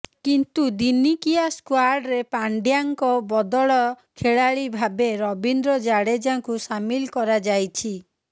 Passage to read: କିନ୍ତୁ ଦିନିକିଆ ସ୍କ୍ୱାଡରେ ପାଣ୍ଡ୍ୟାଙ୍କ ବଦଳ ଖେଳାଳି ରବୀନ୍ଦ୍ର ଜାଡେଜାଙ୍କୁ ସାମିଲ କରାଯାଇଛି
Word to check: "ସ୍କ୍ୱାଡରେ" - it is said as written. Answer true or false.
true